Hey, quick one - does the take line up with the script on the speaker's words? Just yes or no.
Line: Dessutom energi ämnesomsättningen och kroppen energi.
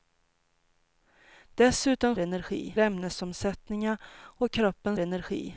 yes